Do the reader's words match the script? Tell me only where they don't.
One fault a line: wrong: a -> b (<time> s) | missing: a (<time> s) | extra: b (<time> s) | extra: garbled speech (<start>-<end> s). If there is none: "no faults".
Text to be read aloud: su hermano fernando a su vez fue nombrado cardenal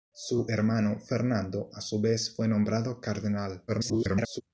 extra: garbled speech (3.7-4.4 s)